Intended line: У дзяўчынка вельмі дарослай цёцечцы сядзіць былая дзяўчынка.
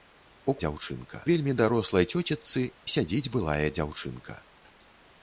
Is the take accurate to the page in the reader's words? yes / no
yes